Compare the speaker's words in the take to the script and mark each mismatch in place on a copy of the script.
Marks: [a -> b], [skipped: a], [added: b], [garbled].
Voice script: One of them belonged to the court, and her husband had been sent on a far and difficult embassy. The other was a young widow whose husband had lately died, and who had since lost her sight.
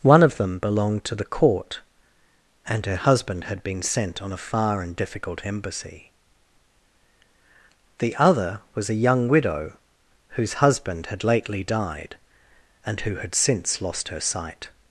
One of them belonged to the court, and her husband had been sent on a far and difficult embassy. The other was a young widow whose husband had lately died, and who had since lost her sight.